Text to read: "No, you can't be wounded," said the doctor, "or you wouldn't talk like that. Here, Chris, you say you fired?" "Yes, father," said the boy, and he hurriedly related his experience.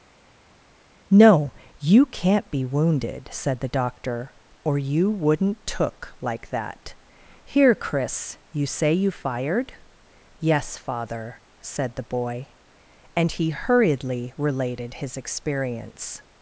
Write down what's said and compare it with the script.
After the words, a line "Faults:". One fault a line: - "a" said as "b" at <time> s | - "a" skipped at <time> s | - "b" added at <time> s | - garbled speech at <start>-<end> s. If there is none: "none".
"No, you can't be wounded," said the doctor, "or you wouldn't took like that. Here, Chris, you say you fired?" "Yes, father," said the boy, and he hurriedly related his experience.
Faults:
- "talk" said as "took" at 5.7 s